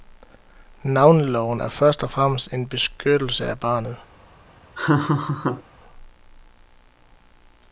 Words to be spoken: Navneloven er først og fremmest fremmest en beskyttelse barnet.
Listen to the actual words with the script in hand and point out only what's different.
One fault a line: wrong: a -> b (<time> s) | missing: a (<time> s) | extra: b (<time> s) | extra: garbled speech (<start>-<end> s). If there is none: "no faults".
missing: fremmest (2.5 s)
extra: af (3.5 s)